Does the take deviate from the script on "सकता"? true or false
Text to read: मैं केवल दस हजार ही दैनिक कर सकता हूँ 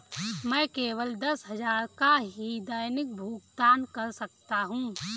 false